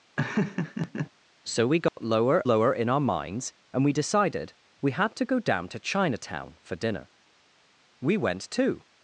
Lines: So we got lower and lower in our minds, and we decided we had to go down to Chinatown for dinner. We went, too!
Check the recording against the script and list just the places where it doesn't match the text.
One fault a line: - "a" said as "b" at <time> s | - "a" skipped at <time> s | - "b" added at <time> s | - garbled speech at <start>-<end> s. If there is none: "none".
- "and" skipped at 2.4 s